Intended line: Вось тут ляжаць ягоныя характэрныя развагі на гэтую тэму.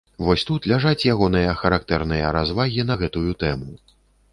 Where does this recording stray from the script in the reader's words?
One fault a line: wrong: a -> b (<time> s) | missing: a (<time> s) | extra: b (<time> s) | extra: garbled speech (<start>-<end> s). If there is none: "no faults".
no faults